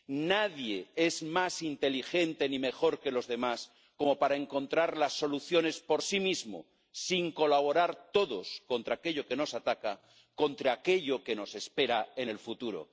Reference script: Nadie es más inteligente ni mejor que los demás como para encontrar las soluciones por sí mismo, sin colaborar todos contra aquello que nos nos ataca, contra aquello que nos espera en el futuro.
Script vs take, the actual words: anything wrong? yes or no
yes